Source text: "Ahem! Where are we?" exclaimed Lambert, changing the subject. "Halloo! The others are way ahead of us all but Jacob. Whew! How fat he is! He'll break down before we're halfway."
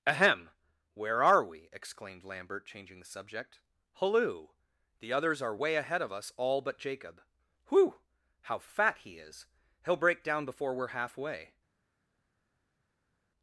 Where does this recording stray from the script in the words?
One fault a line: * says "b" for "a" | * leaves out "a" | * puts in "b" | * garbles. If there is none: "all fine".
all fine